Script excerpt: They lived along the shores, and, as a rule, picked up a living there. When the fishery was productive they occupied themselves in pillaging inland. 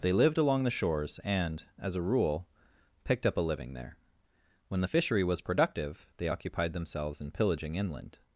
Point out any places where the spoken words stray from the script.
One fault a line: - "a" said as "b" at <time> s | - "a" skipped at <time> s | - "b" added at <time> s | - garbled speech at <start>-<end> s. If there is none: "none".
none